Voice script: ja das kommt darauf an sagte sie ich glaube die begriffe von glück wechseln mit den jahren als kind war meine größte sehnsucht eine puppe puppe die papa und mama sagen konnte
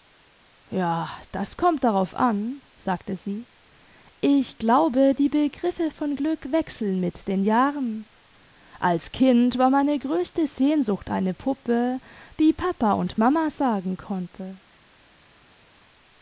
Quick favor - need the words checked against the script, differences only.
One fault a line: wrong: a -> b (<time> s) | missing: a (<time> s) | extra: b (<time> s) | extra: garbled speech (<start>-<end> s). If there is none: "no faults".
missing: puppe (12.0 s)